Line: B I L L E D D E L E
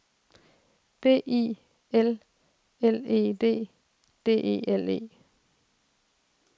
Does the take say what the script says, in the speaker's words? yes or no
yes